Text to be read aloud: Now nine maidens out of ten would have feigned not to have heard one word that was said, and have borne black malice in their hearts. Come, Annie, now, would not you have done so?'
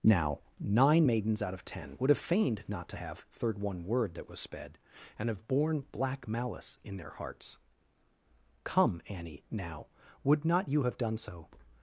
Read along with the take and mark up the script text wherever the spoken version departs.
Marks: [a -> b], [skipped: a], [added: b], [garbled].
Now nine maidens out of ten would have feigned not to have [heard -> third] one word that was [said, -> sped] and have borne black malice in their hearts. Come, Annie, now, would not you have done so?'